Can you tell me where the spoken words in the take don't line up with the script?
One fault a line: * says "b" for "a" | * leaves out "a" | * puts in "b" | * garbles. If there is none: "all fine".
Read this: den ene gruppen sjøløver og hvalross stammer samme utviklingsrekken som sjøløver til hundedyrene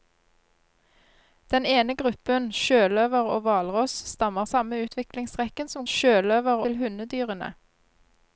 all fine